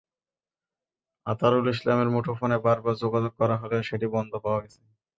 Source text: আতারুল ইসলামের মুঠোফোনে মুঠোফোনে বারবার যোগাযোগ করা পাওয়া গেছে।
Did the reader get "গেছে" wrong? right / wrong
right